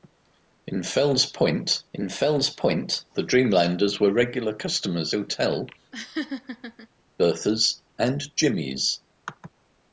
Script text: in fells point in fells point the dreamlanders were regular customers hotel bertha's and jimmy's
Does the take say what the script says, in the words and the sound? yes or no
no